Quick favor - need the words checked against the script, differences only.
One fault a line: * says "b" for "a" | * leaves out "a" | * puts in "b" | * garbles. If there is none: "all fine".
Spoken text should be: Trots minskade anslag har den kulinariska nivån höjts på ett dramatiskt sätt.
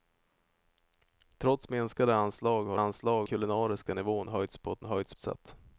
* says "anslag" for "den"
* says "höjts" for "dramatiskt"